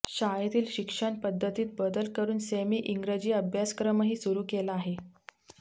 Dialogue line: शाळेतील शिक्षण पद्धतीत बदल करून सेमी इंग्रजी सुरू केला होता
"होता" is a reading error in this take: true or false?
true